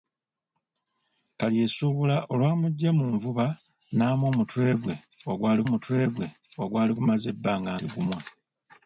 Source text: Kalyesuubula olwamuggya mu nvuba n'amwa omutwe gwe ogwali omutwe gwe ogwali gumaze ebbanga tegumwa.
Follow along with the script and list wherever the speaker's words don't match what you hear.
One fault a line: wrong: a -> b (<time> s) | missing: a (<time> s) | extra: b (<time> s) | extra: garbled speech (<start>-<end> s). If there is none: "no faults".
no faults